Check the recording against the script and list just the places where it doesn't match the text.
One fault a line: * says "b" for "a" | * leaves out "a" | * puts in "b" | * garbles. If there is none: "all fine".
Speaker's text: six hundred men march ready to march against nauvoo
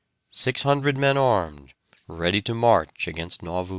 * says "armed" for "march"